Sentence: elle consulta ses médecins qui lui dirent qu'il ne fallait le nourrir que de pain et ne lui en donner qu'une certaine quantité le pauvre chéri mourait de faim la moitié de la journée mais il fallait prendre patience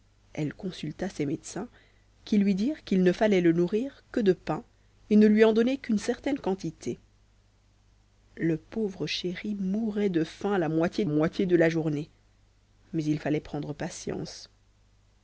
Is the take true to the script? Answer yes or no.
no